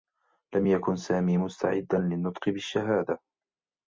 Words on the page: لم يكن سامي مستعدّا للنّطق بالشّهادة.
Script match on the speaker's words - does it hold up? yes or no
yes